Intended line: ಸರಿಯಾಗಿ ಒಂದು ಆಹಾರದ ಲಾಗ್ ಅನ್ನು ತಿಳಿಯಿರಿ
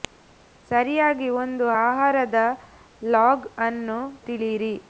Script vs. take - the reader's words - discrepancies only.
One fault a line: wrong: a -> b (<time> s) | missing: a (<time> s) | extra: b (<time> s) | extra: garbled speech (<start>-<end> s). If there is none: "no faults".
no faults